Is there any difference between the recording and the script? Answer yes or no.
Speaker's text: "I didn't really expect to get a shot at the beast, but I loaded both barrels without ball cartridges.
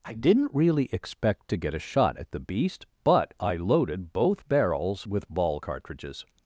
yes